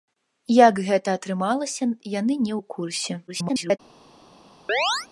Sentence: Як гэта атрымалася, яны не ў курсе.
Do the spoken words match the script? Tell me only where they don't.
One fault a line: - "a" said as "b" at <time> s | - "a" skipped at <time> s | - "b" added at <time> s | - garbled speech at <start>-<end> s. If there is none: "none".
- garbled speech at 3.3-3.8 s